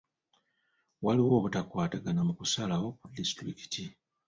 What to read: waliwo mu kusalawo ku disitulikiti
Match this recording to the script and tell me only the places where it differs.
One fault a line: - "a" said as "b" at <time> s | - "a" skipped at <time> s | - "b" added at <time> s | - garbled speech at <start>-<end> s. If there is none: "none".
- "obutakwatagana" added at 1.4 s